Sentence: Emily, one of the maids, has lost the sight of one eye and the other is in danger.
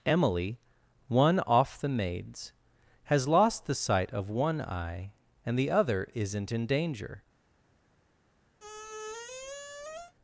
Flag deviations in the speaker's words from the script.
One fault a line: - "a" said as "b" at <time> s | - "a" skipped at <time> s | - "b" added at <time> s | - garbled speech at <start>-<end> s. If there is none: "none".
- "of" said as "off" at 1.4 s
- "is" said as "isn't" at 6.1 s